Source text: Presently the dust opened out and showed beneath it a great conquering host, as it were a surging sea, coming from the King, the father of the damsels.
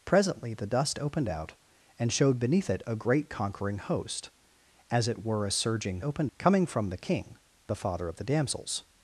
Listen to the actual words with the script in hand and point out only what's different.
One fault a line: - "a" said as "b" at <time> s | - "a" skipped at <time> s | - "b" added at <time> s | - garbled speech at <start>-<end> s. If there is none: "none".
- "sea" said as "opened" at 6.0 s